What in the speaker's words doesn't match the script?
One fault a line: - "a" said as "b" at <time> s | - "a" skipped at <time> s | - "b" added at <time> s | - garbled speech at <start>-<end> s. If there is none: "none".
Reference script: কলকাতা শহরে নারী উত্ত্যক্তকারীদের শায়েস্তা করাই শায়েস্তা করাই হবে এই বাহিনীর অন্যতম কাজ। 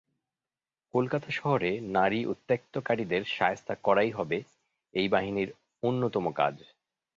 - "শায়েস্তা করাই" skipped at 4.1 s